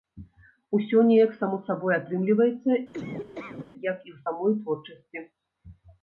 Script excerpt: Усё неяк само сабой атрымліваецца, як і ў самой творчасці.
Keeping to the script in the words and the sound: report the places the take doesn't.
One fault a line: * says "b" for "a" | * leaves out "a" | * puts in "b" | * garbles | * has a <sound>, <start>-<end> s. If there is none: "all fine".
* has a laugh, 2.9-3.7 s